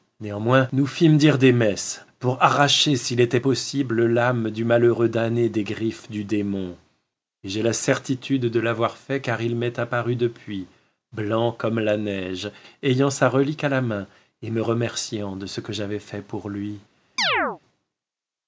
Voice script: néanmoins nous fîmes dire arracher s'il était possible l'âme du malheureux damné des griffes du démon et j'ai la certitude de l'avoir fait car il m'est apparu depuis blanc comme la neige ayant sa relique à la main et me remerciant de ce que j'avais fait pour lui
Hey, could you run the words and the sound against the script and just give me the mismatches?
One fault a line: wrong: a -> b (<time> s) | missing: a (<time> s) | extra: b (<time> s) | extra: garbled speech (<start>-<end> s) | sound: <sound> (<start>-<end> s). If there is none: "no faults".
extra: des messes pour (1.4 s)
sound: chirp (17.2-17.6 s)